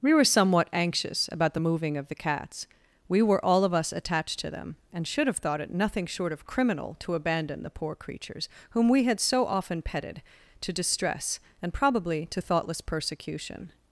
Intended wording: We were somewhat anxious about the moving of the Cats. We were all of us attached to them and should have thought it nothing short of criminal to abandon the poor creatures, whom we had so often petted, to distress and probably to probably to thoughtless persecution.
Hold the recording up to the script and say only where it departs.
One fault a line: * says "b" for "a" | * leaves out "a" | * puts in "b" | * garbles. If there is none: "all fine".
* leaves out "probably to"